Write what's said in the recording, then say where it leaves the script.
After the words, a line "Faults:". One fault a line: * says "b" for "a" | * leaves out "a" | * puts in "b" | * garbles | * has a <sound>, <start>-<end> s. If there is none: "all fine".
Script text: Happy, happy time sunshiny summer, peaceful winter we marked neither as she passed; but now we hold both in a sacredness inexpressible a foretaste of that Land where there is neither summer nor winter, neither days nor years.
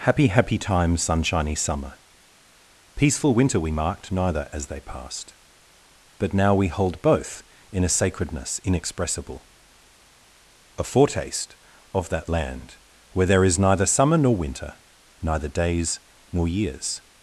Happy, happy time sunshiny summer, peaceful winter we marked neither as they passed; but now we hold both in a sacredness inexpressible a foretaste of that Land where there is neither summer nor winter, neither days nor years.
Faults:
* says "they" for "she"